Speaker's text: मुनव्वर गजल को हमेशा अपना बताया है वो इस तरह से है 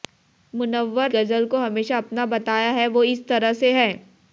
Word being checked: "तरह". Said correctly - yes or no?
yes